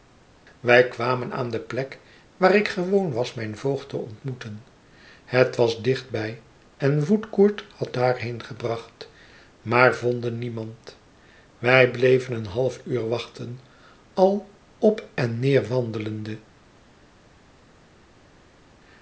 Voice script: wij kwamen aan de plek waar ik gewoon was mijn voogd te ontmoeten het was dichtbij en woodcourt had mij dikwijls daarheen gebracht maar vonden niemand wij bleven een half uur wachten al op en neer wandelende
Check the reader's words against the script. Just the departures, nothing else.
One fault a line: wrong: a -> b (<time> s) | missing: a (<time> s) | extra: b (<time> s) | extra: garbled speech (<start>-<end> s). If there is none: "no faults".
missing: mij dikwijls (7.9 s)